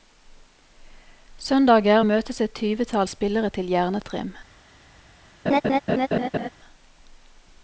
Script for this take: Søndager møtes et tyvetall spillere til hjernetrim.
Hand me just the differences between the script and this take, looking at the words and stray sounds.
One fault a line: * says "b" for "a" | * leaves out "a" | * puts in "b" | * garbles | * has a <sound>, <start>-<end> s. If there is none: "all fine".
* has a laugh, 5.5-6.5 s